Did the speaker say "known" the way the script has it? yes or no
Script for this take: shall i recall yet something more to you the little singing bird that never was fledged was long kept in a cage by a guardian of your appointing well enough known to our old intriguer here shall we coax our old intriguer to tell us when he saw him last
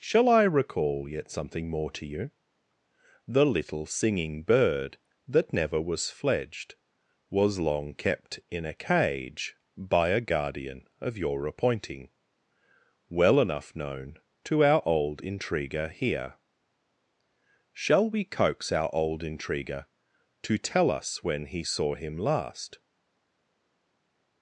yes